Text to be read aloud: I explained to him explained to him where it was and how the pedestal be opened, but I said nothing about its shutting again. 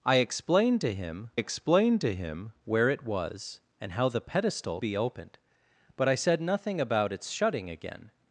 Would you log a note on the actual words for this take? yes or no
no